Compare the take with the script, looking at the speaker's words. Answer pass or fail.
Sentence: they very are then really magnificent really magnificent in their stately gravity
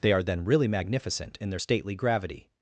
fail